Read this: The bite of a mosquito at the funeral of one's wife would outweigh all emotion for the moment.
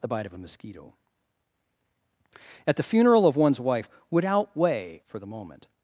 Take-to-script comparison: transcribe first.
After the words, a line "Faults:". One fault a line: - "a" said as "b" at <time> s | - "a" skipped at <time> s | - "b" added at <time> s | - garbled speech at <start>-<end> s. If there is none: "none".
The bite of a mosquito at the funeral of one's wife would outweigh for the moment.
Faults:
- "all emotion" skipped at 5.0 s